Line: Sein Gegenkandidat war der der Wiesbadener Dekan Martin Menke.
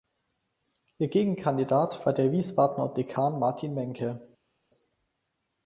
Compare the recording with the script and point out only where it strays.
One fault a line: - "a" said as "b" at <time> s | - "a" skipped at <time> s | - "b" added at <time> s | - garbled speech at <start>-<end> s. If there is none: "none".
- "Sein" said as "Ihr" at 1.0 s
- "der" skipped at 2.3 s